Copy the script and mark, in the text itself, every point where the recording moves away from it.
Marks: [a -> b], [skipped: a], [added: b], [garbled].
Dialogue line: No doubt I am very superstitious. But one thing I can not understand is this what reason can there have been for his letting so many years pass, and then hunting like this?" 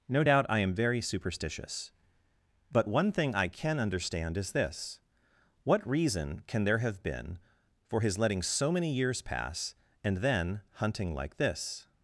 No doubt I am very superstitious. But one thing I can [skipped: not] understand is this what reason can there have been for his letting so many years pass, and then hunting like this?"